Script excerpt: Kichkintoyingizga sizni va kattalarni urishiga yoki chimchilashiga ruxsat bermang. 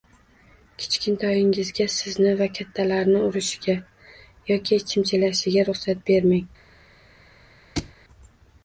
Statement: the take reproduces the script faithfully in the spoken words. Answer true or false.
true